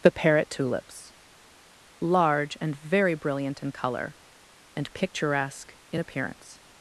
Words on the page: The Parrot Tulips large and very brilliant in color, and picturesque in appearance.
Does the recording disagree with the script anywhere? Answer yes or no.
no